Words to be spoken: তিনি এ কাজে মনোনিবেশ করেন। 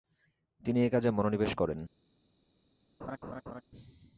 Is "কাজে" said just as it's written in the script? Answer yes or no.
yes